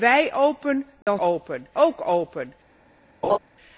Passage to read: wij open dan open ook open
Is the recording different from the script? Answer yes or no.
no